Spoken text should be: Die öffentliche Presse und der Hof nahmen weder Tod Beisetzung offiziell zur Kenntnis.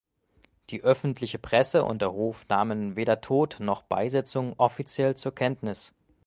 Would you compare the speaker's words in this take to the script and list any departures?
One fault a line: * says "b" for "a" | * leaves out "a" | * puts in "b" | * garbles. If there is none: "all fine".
* puts in "noch"